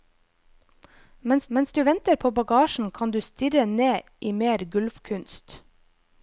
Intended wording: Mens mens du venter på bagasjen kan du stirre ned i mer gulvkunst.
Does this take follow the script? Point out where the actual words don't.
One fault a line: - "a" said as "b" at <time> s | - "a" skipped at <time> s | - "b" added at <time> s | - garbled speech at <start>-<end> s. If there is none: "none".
none